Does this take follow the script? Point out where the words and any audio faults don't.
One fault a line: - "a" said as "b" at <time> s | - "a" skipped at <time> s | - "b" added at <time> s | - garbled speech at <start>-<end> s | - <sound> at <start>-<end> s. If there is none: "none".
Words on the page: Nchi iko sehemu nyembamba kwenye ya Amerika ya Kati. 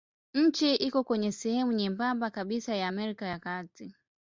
- "kwenye" added at 1.0 s
- "kwenye" said as "kabisa" at 2.3 s